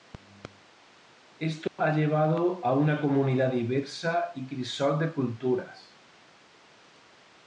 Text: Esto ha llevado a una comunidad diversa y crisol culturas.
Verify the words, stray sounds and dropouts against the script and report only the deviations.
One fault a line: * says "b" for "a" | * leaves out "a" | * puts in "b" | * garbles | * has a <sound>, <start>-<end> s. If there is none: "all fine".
* has a dropout, 1.7-1.8 s
* puts in "de"